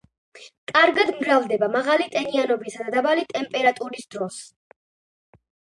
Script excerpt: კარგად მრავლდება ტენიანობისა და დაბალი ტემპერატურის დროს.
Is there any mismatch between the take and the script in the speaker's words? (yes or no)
yes